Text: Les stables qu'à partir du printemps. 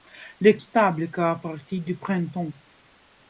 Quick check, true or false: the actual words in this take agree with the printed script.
true